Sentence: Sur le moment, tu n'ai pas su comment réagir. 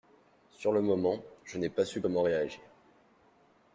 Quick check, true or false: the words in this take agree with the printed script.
false